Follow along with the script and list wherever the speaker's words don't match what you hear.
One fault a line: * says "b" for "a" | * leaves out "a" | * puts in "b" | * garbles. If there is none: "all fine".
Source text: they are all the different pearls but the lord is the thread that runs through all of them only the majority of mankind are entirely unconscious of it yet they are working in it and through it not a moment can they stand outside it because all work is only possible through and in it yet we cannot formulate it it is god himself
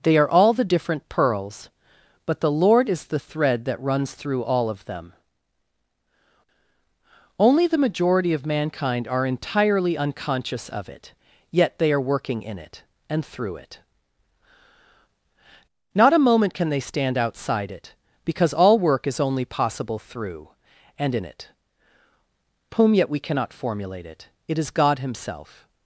* puts in "whom"